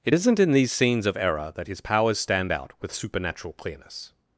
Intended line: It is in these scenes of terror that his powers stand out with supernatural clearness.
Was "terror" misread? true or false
true